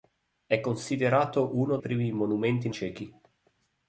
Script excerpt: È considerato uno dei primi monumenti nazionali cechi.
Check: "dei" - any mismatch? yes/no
yes